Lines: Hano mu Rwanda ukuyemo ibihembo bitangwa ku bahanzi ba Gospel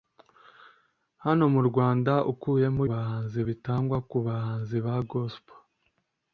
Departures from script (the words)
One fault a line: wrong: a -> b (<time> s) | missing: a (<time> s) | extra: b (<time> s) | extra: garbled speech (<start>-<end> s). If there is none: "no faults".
wrong: ibihembo -> bahanzi (2.9 s)